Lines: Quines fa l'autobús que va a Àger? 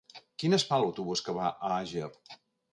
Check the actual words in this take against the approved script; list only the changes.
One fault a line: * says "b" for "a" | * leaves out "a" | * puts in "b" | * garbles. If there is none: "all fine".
all fine